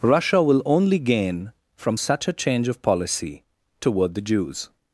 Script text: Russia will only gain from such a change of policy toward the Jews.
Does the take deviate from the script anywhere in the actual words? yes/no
no